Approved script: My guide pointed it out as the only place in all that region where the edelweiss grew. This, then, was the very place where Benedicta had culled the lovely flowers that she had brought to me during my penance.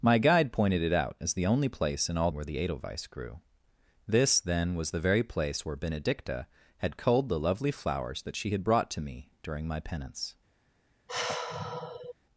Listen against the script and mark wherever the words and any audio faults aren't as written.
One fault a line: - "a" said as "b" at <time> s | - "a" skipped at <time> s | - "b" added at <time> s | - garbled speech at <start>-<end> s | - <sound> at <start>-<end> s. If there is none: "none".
- "that region" skipped at 2.3 s
- sigh at 11.1-12.2 s